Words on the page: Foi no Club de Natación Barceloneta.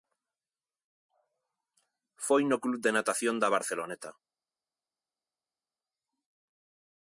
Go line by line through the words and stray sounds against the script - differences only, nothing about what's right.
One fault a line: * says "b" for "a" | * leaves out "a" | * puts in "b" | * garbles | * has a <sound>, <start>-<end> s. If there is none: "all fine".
* puts in "da"